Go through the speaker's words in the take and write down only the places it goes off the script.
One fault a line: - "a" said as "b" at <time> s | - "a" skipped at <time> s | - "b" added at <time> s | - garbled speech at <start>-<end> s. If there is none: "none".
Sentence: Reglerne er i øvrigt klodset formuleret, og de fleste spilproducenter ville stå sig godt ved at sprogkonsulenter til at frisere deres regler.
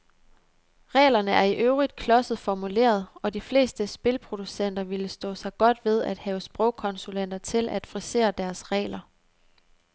- "have" added at 6.2 s